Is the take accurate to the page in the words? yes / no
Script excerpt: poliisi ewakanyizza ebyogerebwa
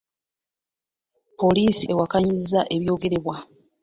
yes